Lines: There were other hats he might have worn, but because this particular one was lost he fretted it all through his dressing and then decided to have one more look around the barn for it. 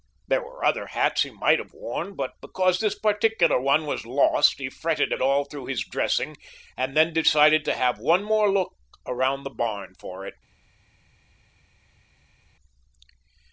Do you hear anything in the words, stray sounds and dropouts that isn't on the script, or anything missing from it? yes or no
no